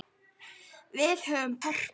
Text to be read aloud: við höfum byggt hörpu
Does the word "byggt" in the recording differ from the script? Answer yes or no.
yes